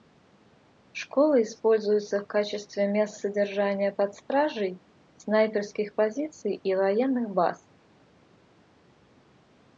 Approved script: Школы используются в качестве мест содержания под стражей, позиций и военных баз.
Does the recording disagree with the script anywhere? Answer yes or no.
yes